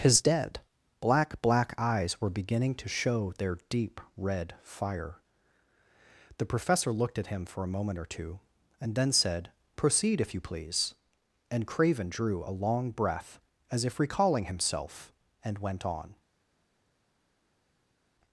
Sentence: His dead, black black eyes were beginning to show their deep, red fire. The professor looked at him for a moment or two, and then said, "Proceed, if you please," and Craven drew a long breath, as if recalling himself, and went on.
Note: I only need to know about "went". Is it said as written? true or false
true